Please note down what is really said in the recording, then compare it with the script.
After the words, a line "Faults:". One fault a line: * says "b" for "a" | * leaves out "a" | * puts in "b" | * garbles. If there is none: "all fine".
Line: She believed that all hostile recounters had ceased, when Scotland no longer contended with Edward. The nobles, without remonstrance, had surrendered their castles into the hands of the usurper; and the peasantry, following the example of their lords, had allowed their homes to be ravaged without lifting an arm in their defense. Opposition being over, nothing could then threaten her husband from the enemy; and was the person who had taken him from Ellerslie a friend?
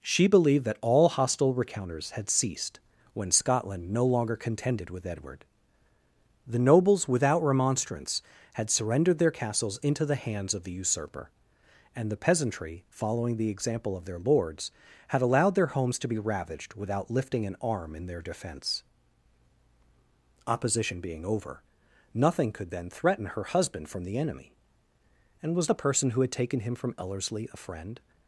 She believed that all hostile recounters had ceased, when Scotland no longer contended with Edward. The nobles, without remonstrance, had surrendered their castles into the hands of the usurper; and the peasantry, following the example of their lords, had allowed their homes to be ravaged without lifting an arm in their defense. Opposition being over, nothing could then threaten her husband from the enemy; and was the person who had taken him from Ellerslie a friend?
Faults:
all fine